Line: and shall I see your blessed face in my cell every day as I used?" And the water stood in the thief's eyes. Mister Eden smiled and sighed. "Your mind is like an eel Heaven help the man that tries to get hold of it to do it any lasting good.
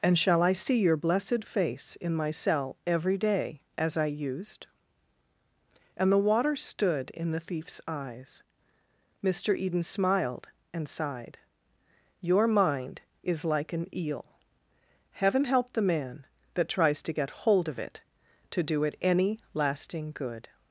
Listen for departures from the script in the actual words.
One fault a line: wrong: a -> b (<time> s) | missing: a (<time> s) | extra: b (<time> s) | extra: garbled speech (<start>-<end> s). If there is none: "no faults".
no faults